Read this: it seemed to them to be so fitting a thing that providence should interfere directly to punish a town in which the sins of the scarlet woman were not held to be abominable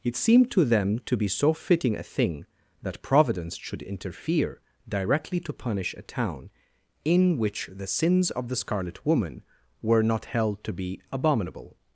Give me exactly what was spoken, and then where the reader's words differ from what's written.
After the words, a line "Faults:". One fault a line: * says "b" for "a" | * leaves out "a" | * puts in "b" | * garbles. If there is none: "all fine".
it seemed to them to be so fitting a thing that providence should interfere directly to punish a town in which the sins of the scarlet woman were not held to be abominable
Faults:
all fine